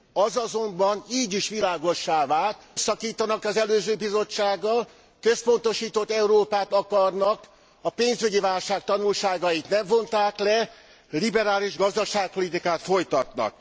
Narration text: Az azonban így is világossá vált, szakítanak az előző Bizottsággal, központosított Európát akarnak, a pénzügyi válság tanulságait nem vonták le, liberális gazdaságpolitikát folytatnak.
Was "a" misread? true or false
false